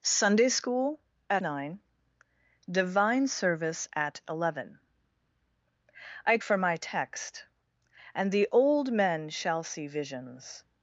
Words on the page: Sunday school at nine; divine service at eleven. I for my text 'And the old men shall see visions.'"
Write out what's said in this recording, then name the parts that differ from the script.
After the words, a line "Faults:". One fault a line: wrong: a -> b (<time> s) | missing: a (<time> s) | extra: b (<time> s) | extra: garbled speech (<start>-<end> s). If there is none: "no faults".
Sunday school at nine; divine service at eleven. I for my text 'And the old men shall see visions.'"
Faults:
no faults